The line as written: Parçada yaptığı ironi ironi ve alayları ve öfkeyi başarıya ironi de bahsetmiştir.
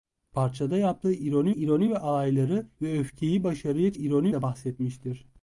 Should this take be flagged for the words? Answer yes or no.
no